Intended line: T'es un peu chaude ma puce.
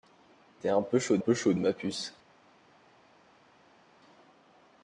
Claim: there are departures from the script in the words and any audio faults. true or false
true